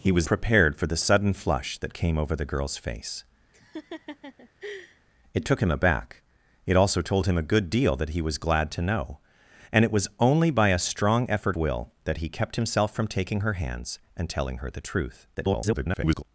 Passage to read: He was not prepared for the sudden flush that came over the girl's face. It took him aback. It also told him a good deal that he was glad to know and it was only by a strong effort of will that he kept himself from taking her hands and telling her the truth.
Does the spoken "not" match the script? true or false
false